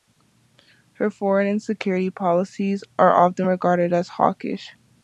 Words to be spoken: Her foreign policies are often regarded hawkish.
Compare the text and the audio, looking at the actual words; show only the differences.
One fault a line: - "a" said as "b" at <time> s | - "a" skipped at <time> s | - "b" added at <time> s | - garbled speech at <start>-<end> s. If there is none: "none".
- "and security" added at 1.5 s
- "as" added at 3.9 s